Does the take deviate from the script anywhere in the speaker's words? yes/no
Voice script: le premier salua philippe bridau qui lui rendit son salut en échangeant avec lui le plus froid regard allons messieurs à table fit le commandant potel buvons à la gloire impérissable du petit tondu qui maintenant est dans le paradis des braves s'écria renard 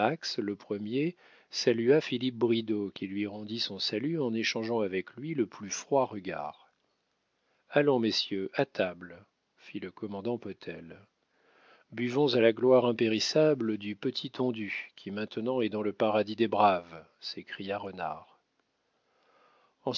no